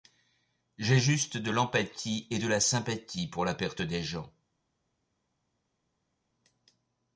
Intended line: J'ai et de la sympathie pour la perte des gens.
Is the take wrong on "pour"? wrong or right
right